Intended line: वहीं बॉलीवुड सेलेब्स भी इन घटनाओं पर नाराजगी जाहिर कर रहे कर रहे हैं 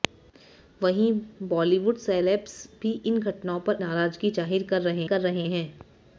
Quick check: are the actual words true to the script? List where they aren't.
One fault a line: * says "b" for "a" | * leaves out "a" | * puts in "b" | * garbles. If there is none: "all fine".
all fine